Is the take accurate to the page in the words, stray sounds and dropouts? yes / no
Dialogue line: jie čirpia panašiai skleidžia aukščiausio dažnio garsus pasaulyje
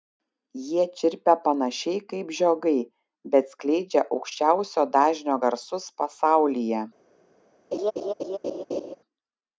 no